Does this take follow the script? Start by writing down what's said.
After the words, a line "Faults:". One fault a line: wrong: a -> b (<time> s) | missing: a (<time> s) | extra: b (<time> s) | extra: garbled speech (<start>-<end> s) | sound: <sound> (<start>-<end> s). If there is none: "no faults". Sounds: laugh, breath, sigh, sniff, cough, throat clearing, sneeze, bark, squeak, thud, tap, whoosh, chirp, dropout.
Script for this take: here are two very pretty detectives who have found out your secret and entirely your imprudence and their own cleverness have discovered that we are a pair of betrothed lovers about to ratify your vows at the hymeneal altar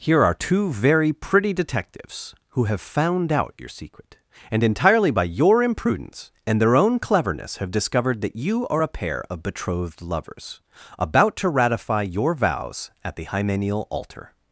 here are two very pretty detectives who have found out your secret and entirely by your imprudence and their own cleverness have discovered that you are a pair of betrothed lovers about to ratify your vows at the hymeneal altar
Faults:
extra: by (5.1 s)
wrong: we -> you (8.3 s)